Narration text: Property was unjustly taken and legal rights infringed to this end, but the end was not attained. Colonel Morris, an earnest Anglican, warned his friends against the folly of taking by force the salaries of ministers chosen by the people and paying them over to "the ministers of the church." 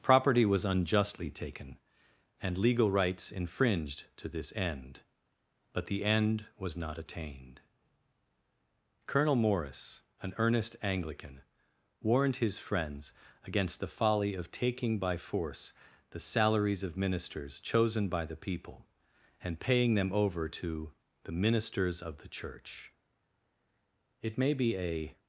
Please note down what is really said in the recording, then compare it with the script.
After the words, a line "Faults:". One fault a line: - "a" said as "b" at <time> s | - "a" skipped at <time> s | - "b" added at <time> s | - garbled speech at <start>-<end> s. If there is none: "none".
Property was unjustly taken and legal rights infringed to this end, but the end was not attained. Colonel Morris, an earnest Anglican, warned his friends against the folly of taking by force the salaries of ministers chosen by the people and paying them over to "the ministers of the church." "It may be a
Faults:
- "It may be a" added at 24.2 s